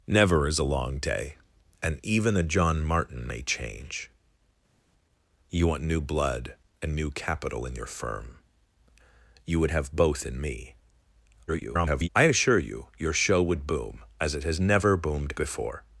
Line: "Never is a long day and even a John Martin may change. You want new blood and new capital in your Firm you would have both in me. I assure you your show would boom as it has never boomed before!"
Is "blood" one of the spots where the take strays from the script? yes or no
no